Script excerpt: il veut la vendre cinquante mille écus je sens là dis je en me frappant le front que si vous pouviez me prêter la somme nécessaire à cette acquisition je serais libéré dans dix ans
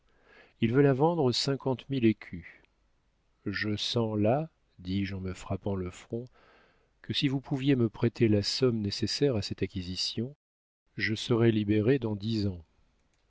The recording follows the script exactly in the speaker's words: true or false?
true